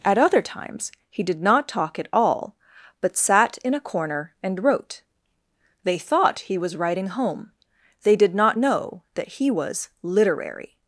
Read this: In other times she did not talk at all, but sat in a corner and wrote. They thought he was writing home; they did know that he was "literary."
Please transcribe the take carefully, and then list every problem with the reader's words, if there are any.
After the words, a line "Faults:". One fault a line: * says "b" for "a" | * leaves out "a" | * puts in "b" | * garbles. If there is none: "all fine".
At other times he did not talk at all, but sat in a corner and wrote. They thought he was writing home; they did not know that he was "literary."
Faults:
* says "At" for "In"
* says "he" for "she"
* puts in "not"